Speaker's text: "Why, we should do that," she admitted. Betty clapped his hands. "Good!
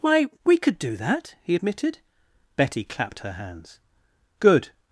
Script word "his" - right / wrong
wrong